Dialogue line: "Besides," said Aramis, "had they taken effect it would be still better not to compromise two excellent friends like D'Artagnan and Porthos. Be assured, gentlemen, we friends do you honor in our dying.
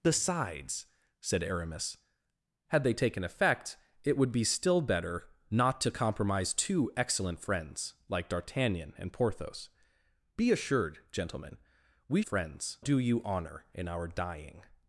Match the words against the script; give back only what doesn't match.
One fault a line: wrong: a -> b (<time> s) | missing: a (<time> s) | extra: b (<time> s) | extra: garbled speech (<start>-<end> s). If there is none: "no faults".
no faults